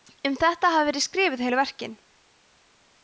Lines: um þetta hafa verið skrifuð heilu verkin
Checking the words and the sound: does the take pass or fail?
pass